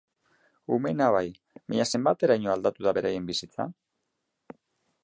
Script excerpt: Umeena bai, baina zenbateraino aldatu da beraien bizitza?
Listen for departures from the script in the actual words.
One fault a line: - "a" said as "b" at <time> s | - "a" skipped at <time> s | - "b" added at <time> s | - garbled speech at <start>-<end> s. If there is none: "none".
none